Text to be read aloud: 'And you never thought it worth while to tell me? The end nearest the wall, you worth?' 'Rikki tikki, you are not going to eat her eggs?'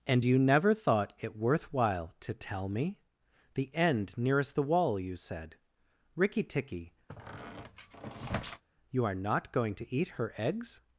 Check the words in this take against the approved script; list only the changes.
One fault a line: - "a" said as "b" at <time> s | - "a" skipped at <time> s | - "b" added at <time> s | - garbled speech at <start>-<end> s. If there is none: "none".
- "worth" said as "said" at 5.2 s